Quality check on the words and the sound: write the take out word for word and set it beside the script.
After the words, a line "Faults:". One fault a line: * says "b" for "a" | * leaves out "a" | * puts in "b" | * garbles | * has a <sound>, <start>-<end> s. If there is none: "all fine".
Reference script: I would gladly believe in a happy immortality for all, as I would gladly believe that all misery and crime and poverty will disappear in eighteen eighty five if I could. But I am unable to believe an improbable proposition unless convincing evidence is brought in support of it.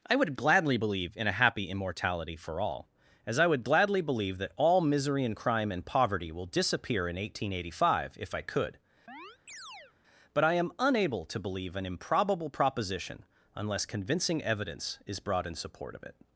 I would gladly believe in a happy immortality for all, as I would gladly believe that all misery and crime and poverty will disappear in eighteen eighty five if I could. But I am unable to believe an improbable proposition unless convincing evidence is brought in support of it.
Faults:
* has a chirp, 9.1-9.9 s